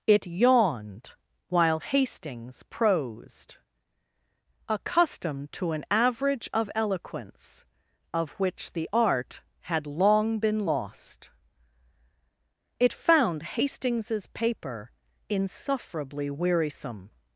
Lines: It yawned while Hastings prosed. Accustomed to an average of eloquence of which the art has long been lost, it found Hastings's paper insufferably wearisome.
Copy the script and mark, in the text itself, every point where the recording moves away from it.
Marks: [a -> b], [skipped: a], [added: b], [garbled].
It yawned while Hastings prosed. Accustomed to an average of eloquence of which the art [has -> had] long been lost, it found Hastings's paper insufferably wearisome.